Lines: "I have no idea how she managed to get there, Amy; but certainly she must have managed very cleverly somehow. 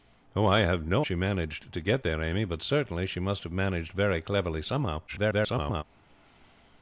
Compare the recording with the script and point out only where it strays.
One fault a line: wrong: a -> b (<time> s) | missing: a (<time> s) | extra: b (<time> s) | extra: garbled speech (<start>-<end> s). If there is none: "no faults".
missing: idea how (1.1 s)
extra: garbled speech (5.1-5.8 s)